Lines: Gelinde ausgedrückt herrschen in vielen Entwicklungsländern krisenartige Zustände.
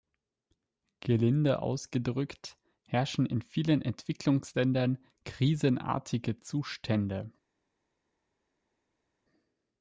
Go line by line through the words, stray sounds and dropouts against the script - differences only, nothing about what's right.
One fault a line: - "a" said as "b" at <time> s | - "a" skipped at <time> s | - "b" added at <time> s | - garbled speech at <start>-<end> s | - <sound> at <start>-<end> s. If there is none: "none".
none